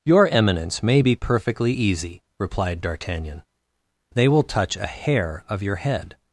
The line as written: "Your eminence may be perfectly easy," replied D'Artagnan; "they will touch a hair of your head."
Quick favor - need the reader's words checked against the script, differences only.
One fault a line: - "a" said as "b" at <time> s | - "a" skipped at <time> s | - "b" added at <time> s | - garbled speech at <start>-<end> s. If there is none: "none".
none